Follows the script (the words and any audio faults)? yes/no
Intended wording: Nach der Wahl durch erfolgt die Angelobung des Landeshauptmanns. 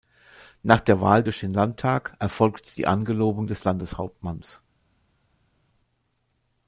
no